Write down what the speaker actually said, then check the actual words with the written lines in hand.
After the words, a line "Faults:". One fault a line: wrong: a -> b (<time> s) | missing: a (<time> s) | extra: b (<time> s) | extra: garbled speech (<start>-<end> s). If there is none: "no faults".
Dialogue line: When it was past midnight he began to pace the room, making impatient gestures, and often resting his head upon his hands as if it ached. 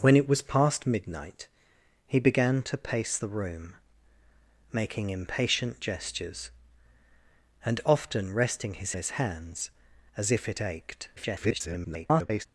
When it was past midnight he began to pace the room, making impatient gestures, and often resting his his hands as if it ached. [garbled]
Faults:
missing: head upon (8.9 s)
extra: garbled speech (11.2-12.5 s)